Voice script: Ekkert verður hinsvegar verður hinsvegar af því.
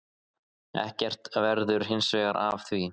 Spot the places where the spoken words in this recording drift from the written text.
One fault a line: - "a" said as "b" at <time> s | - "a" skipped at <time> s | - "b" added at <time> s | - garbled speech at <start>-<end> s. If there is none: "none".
- "verður hinsvegar" skipped at 2.4 s